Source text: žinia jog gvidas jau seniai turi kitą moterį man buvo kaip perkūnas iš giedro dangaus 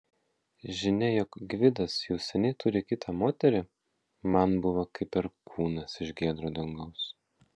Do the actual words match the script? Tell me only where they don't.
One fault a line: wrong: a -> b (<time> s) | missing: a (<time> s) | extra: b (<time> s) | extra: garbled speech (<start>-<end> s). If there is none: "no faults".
no faults